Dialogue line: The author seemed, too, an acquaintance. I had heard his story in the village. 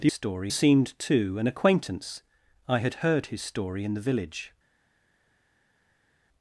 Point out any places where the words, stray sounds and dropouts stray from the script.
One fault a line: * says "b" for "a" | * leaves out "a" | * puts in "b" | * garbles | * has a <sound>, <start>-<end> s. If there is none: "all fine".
* says "story" for "author"